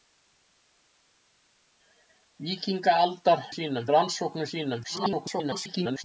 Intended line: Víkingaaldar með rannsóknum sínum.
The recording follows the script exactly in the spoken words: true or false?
false